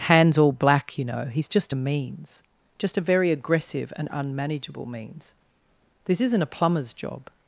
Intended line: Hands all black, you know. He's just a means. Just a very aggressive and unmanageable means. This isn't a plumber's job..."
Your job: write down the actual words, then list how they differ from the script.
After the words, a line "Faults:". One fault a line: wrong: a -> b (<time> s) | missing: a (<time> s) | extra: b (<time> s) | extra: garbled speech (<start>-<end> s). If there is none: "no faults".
Hands all black, you know. He's just a means. Just a very aggressive and unmanageable means. This isn't a plumber's job..."
Faults:
no faults